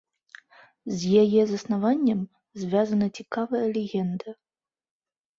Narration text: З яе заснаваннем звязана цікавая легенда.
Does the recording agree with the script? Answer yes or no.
yes